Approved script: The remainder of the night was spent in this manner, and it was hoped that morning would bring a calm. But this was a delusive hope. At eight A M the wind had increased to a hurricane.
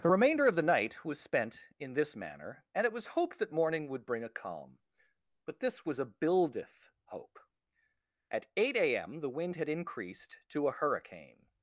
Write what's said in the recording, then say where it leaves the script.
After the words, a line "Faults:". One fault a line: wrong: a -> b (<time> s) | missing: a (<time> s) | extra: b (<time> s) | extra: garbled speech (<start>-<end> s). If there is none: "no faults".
The remainder of the night was spent in this manner, and it was hoped that morning would bring a calm. But this was a buildeth hope. At eight A M the wind had increased to a hurricane.
Faults:
wrong: delusive -> buildeth (6.0 s)